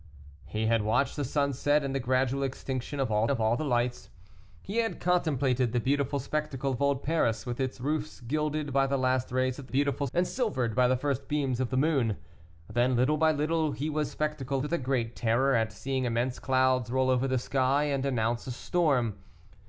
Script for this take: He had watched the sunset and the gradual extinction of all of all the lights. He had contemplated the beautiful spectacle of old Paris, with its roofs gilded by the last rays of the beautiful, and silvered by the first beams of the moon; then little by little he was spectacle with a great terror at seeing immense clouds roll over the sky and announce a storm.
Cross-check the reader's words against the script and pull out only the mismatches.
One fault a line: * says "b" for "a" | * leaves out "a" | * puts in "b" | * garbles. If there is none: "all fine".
all fine